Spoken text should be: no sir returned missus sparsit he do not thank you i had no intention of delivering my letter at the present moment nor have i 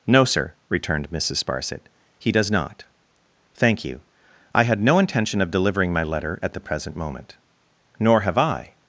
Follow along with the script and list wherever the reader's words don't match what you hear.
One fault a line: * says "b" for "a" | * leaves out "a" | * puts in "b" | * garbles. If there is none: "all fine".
* says "does" for "do"